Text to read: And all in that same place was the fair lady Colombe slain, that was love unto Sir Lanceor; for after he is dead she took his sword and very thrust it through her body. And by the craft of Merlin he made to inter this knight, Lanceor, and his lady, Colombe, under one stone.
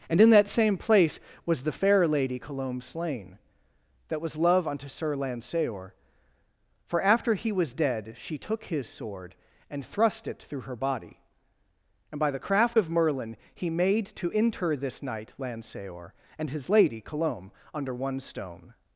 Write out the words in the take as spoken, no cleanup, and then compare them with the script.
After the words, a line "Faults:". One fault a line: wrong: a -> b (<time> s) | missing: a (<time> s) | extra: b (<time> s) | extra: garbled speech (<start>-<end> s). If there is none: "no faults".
And in that same place was the fair lady Colombe slain, that was love unto Sir Lanceor; for after he was dead she took his sword and thrust it through her body. And by the craft of Merlin he made to inter this knight, Lanceor, and his lady, Colombe, under one stone.
Faults:
missing: all (0.2 s)
wrong: is -> was (7.5 s)
missing: very (9.9 s)